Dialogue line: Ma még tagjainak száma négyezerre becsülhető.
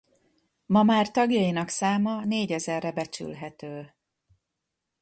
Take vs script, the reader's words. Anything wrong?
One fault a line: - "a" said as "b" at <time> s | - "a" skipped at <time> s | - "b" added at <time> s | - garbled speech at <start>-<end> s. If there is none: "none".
- "még" said as "már" at 0.8 s